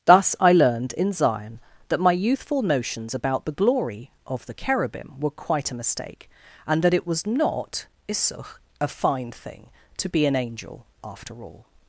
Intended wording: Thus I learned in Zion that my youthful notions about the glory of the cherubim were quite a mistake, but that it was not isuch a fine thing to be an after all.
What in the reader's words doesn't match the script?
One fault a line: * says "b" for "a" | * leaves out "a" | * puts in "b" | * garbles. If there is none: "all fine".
* says "and" for "but"
* puts in "angel"